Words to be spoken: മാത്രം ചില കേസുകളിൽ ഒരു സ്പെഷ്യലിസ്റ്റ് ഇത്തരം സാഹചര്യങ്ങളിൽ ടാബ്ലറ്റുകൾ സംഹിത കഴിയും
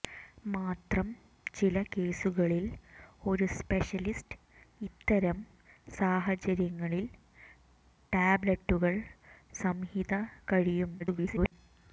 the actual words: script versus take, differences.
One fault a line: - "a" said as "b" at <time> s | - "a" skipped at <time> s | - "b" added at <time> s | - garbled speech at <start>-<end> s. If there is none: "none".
- garbled speech at 11.0-11.5 s